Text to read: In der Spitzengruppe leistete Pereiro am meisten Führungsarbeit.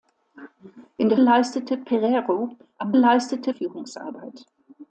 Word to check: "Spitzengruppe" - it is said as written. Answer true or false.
false